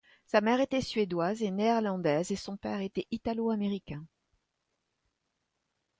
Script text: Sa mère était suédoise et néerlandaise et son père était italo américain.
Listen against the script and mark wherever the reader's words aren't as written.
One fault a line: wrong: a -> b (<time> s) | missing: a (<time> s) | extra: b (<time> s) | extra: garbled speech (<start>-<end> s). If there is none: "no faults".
no faults